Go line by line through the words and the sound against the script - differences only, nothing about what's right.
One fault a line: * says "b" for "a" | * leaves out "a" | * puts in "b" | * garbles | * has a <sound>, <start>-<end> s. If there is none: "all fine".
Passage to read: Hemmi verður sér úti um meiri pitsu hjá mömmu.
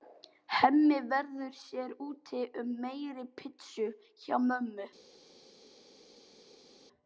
all fine